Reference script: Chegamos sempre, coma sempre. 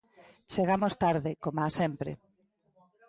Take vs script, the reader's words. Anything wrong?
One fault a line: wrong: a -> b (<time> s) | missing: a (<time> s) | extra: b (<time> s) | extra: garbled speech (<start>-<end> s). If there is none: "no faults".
wrong: sempre -> tarde (1.0 s)